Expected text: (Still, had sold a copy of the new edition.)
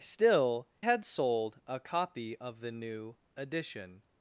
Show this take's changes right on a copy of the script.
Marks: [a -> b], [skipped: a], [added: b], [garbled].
(Still, had sold a copy of the new edition.)